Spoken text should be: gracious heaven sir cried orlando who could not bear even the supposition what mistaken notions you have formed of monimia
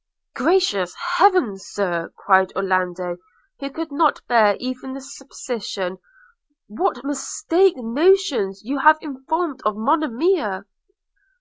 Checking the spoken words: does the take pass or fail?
pass